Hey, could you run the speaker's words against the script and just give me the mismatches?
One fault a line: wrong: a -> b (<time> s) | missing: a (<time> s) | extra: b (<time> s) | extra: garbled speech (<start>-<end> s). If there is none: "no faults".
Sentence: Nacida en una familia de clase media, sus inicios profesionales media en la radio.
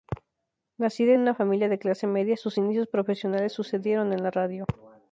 wrong: media -> sucedieron (3.5 s)